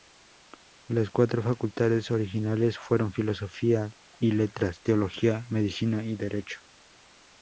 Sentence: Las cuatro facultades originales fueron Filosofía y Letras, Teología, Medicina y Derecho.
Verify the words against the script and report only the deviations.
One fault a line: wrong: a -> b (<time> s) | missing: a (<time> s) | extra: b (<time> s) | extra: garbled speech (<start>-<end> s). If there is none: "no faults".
no faults